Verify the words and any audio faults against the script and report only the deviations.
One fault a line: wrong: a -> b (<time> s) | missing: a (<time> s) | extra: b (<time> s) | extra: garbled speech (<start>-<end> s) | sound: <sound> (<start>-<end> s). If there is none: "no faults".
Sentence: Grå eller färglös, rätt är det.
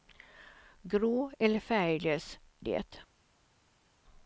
missing: rätt är (2.4 s)